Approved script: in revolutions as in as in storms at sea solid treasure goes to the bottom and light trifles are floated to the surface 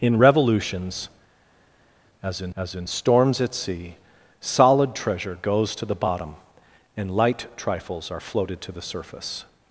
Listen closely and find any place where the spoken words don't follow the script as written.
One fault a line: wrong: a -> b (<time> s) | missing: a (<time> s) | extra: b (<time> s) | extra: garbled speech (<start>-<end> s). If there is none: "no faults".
no faults